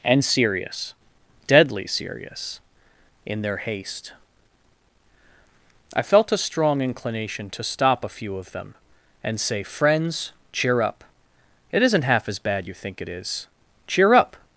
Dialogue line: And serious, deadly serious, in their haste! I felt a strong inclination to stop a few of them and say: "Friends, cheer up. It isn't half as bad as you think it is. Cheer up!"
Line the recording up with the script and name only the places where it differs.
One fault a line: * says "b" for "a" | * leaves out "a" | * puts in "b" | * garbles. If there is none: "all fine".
* leaves out "as"